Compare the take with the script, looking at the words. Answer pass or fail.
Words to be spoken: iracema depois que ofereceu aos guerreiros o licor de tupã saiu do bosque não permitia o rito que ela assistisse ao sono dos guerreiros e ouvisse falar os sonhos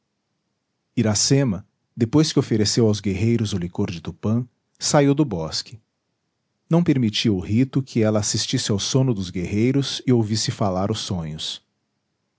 pass